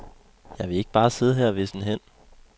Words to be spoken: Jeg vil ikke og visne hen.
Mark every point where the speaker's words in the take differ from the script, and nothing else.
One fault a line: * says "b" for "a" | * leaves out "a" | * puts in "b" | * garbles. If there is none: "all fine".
* puts in "bare sidde her"